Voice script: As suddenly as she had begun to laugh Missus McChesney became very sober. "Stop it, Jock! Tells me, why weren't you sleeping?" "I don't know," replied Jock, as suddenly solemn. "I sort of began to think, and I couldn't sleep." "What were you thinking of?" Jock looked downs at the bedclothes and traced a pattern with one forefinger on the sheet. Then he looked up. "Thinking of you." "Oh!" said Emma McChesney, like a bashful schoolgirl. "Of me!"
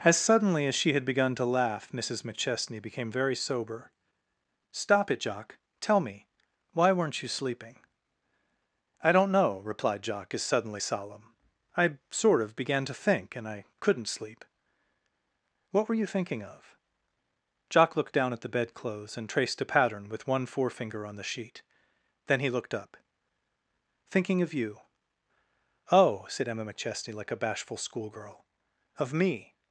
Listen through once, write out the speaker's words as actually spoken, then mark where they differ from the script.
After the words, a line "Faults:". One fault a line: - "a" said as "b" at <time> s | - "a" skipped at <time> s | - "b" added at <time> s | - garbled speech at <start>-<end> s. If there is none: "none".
As suddenly as she had begun to laugh Missus McChesney became very sober. "Stop it, Jock! Tell me, why weren't you sleeping?" "I don't know," replied Jock, as suddenly solemn. "I sort of began to think, and I couldn't sleep." "What were you thinking of?" Jock looked down at the bedclothes and traced a pattern with one forefinger on the sheet. Then he looked up. "Thinking of you." "Oh!" said Emma McChesney, like a bashful schoolgirl. "Of me!"
Faults:
- "Tells" said as "Tell" at 5.8 s
- "downs" said as "down" at 18.1 s